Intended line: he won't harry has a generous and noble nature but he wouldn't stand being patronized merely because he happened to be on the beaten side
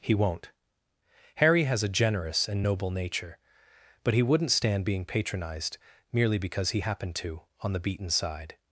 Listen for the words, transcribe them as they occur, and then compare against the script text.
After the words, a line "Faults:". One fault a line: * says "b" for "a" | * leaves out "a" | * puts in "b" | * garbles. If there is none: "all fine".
he won't harry has a generous and noble nature but he wouldn't stand being patronized merely because he happened to on the beaten side
Faults:
* leaves out "be"